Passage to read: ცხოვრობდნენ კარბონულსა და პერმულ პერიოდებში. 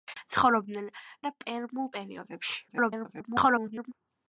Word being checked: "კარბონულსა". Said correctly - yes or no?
no